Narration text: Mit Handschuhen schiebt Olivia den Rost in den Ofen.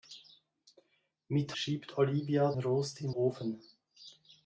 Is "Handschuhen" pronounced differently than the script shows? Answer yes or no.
yes